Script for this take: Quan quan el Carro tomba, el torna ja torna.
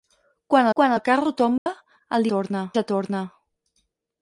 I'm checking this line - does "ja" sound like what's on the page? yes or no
yes